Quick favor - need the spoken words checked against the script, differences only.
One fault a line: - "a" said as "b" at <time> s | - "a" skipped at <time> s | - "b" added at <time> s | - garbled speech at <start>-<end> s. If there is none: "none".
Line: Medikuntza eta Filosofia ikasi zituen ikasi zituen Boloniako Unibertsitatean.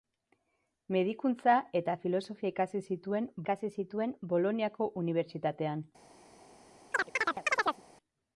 none